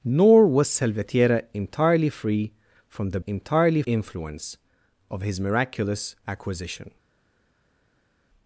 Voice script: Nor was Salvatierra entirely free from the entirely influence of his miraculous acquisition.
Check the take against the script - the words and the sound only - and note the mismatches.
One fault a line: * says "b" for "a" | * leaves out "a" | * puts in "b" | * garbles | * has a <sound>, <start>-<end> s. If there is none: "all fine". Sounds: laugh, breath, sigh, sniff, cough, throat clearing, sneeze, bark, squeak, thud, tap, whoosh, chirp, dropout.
all fine